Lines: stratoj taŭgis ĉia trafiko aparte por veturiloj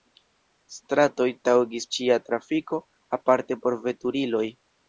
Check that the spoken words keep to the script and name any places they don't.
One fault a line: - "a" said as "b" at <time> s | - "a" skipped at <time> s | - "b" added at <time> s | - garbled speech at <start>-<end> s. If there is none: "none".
none